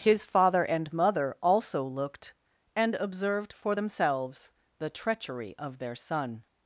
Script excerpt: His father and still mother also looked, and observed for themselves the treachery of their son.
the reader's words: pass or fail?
fail